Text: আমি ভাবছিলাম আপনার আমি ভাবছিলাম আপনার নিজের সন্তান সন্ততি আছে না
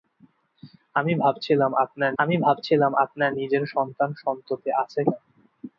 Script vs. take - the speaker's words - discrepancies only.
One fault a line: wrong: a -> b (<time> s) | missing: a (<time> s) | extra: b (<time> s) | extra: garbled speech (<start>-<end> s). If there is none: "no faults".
no faults